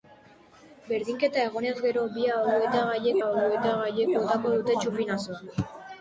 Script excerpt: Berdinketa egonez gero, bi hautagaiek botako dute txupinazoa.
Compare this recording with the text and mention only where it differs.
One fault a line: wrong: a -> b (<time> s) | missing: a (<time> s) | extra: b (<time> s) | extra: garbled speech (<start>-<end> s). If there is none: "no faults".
extra: hautagaiek (3.3 s)